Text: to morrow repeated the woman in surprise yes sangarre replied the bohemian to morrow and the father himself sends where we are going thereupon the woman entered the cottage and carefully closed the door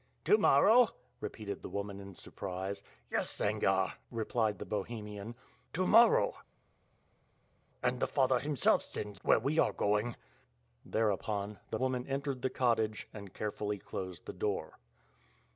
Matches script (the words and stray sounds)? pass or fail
pass